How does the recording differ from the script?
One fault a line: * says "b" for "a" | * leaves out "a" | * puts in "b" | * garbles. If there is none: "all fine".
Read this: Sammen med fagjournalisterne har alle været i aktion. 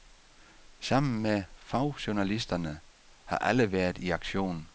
all fine